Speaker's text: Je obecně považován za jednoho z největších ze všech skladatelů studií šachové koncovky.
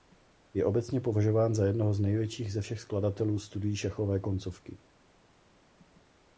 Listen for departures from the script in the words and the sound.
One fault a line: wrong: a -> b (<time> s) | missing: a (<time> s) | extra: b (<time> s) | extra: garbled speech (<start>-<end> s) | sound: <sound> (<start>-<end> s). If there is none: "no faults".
no faults